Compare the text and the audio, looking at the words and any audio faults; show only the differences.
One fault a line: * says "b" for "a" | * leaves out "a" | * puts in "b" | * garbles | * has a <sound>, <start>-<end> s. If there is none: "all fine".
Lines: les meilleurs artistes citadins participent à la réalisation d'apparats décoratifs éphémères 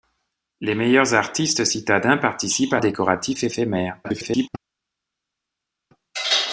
* leaves out "la réalisation d'apparats"
* garbles